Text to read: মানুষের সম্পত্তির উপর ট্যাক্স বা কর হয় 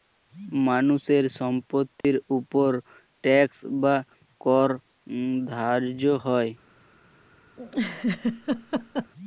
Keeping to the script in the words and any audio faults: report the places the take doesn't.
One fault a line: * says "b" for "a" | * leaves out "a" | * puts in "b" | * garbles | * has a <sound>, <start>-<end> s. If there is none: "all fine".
* has a dropout, 2.0-2.0 s
* puts in "ধার্য"
* has a laugh, 7.6-9.1 s